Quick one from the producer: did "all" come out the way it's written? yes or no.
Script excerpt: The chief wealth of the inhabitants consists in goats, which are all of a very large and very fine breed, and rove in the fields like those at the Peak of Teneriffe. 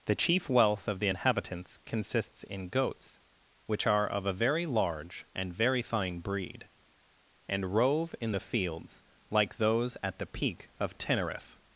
no